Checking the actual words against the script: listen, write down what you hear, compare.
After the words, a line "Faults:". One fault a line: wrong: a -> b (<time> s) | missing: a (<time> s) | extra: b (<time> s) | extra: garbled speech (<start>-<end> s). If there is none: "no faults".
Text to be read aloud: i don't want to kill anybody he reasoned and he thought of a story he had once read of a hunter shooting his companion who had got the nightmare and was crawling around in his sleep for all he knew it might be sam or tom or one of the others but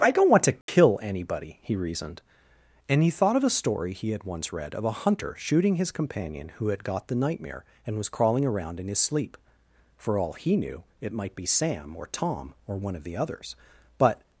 i don't want to kill anybody he reasoned and he thought of a story he had once read of a hunter shooting his companion who had got the nightmare and was crawling around in his sleep for all he knew it might be sam or tom or one of the others but
Faults:
no faults